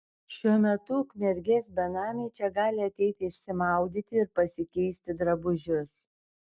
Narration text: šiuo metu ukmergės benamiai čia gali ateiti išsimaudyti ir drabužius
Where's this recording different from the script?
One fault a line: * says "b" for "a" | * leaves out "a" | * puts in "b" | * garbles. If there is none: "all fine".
* puts in "pasikeisti"